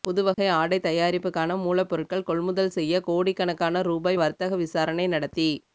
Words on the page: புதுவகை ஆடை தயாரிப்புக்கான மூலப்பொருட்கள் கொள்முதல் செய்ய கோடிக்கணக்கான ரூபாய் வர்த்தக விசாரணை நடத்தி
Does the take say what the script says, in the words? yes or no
yes